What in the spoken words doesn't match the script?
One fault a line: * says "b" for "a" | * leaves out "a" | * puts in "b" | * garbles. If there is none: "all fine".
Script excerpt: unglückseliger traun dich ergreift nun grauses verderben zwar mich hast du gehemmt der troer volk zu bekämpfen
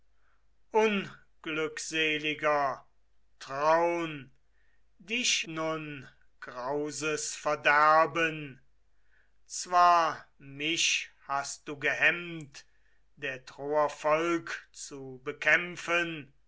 * leaves out "ergreift"